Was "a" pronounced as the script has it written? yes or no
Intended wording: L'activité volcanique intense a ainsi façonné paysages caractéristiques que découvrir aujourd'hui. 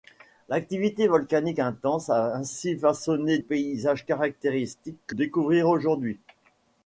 yes